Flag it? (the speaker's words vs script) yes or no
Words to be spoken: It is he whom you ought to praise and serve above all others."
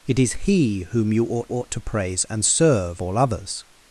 yes